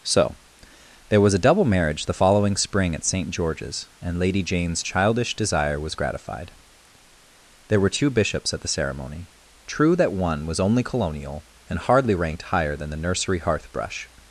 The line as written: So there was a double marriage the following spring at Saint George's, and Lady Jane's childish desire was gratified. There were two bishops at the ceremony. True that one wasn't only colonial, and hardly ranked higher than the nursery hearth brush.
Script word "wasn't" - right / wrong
wrong